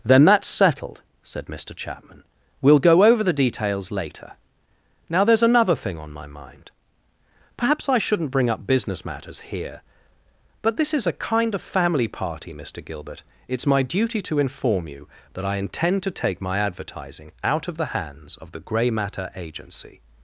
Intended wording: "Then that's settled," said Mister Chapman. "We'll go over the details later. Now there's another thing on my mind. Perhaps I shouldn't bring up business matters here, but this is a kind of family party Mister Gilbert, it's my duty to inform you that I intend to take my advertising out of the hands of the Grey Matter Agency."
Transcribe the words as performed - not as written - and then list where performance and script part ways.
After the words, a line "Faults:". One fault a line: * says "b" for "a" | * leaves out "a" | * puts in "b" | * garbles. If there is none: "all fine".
"Then that's settled," said Mister Chapman. "We'll go over the details later. Now there's another thing on my mind. Perhaps I shouldn't bring up business matters here, but this is a kind of family party Mister Gilbert, it's my duty to inform you that I intend to take my advertising out of the hands of the Grey Matter Agency."
Faults:
all fine